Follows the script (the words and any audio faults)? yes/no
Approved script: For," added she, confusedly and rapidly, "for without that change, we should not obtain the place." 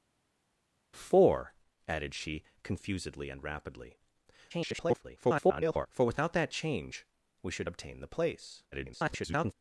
no